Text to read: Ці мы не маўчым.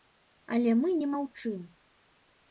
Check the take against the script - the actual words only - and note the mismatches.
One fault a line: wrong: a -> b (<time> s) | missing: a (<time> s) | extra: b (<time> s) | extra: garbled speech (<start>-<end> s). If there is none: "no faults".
wrong: Ці -> Але (0.6 s)